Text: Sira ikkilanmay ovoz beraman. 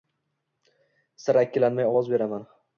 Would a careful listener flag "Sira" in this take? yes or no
no